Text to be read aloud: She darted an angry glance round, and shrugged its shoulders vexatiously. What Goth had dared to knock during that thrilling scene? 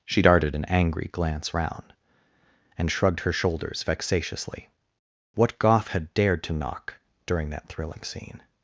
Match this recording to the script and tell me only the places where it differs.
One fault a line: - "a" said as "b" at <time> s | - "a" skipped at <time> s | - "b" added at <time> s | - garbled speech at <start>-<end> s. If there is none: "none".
- "its" said as "her" at 3.2 s